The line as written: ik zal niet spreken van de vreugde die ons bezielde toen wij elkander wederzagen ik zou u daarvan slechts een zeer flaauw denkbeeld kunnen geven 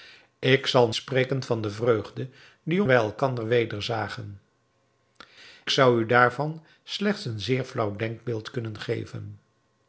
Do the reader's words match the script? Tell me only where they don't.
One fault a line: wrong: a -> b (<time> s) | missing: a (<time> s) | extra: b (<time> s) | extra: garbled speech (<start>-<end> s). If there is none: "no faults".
missing: niet (0.9 s)
missing: ons bezielde toen (2.8 s)
missing: ik (4.4 s)